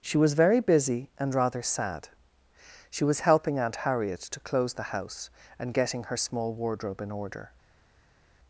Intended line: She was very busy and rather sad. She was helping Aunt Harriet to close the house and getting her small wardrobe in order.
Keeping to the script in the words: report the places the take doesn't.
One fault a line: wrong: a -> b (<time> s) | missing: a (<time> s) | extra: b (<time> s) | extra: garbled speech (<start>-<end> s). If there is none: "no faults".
no faults